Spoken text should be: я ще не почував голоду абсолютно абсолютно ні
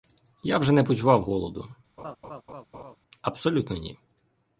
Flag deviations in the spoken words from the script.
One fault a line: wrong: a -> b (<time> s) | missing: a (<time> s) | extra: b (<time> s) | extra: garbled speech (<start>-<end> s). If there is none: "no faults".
wrong: ще -> вже (0.6 s)
missing: абсолютно (3.8 s)